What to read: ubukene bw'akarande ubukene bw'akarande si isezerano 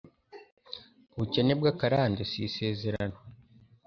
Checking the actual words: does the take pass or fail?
fail